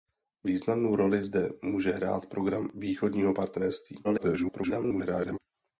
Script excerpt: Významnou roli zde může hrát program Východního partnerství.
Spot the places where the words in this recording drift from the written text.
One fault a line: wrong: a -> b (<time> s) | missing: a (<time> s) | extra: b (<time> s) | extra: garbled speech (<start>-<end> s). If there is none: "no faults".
extra: garbled speech (4.0-5.4 s)